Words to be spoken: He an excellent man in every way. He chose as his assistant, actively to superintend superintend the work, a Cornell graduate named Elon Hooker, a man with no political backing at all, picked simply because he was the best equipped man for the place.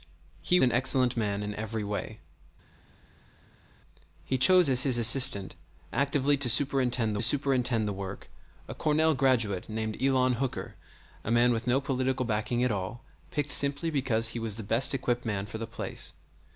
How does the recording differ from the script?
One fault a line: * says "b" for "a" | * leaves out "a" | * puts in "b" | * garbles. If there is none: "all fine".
all fine